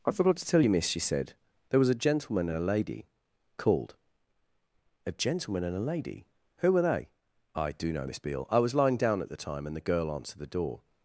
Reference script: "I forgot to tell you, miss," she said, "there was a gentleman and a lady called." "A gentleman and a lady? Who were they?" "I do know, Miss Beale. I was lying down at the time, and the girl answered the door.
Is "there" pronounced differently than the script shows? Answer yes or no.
no